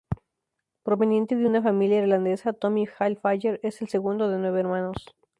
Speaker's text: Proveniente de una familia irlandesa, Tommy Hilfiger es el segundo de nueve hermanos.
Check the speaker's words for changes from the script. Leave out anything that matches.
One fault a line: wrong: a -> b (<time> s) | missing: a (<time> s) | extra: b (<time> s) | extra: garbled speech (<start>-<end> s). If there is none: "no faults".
no faults